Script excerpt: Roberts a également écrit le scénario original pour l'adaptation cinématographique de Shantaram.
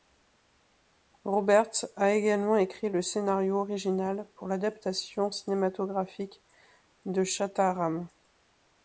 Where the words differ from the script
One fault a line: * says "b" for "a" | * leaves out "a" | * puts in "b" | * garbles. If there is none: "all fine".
all fine